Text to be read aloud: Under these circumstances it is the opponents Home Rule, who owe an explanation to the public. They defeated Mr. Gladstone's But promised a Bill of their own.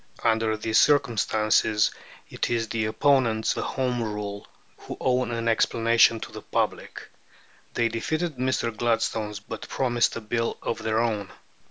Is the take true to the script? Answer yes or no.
yes